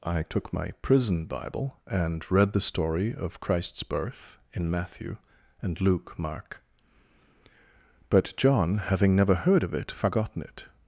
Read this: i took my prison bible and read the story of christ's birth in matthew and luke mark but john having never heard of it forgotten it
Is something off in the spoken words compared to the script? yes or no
no